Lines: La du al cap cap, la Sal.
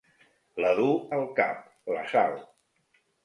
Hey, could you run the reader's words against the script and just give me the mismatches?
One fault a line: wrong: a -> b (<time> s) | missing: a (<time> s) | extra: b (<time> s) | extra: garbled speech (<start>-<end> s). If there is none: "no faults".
missing: cap (1.7 s)